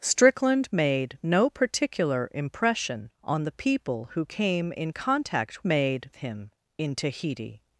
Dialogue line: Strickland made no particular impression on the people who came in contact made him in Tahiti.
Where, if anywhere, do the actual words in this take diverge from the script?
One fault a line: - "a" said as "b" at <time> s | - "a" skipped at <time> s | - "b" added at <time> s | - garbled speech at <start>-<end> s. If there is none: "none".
none